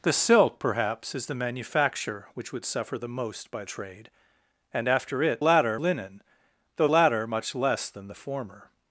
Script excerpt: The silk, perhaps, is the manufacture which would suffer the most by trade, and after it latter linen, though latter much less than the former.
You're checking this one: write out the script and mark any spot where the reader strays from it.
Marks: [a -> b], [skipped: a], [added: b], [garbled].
The silk, perhaps, is the manufacture which would suffer the most by trade, and after it latter linen, though latter much less than the former.